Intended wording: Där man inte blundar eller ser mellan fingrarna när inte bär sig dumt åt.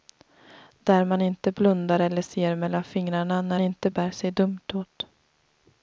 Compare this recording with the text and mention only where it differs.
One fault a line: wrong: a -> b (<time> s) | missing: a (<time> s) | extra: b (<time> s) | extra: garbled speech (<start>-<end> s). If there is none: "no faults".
no faults